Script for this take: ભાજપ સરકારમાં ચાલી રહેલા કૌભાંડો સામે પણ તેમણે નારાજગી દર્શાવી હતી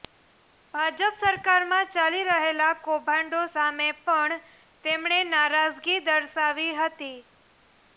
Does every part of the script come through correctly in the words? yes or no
yes